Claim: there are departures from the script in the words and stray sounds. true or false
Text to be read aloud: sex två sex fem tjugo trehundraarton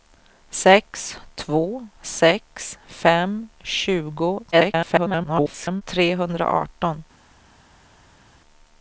true